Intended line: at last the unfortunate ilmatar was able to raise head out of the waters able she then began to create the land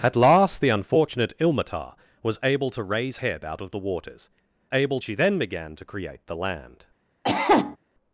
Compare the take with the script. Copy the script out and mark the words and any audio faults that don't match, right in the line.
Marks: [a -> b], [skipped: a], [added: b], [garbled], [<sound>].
at last the unfortunate ilmatar was able to raise head out of the waters able she then began to create the land [cough]